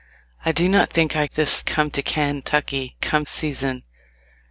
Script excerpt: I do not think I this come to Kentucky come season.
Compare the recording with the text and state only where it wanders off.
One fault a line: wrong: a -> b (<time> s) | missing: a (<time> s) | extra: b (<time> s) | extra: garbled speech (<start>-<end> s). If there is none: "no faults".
no faults